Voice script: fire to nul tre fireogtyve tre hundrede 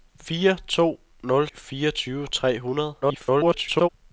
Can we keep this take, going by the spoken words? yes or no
no